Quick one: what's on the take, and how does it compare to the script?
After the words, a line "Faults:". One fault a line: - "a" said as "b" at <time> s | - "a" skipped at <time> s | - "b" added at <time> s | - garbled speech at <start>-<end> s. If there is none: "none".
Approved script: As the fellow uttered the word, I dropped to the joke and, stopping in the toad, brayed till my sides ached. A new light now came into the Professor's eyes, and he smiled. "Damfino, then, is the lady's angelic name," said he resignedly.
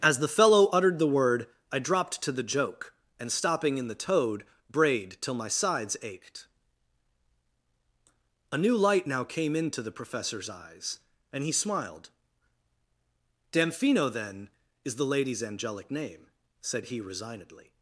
As the fellow uttered the word, I dropped to the joke and, stopping in the toad, brayed till my sides ached. A new light now came into the Professor's eyes, and he smiled. "Damfino, then, is the lady's angelic name," said he resignedly.
Faults:
none